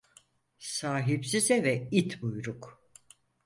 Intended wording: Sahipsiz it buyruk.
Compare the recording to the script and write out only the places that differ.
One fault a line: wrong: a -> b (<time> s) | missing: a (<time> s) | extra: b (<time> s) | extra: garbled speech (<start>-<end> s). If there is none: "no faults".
extra: eve (1.5 s)